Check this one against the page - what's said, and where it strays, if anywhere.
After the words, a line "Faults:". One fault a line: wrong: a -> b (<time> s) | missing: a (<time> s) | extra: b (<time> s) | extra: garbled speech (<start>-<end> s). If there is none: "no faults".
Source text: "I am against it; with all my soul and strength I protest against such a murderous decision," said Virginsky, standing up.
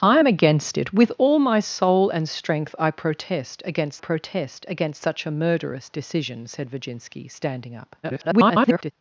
"I am against it; with all my soul and strength I protest against protest against such a murderous decision," said Virginsky, standing up. [garbled]
Faults:
extra: protest against (4.0 s)
extra: garbled speech (8.0-8.9 s)